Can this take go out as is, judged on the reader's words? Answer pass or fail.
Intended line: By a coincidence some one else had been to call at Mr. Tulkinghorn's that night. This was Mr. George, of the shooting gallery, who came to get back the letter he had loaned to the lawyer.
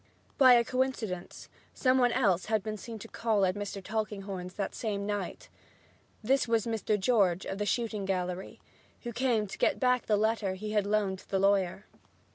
fail